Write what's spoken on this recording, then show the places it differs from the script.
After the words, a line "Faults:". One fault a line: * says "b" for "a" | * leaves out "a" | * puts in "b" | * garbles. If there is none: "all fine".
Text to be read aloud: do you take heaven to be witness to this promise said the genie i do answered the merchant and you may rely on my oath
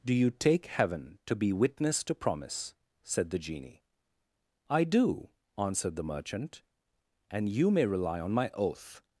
do you take heaven to be witness to promise said the genie i do answered the merchant and you may rely on my oath
Faults:
* leaves out "this"